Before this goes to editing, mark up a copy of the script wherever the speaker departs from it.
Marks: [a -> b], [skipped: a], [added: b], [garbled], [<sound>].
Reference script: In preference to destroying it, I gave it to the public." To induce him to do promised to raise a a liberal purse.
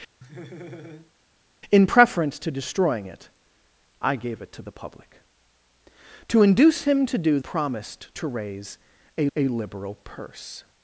[laugh] In preference to destroying it, I gave it to the public." To induce him to do promised to raise a a liberal purse.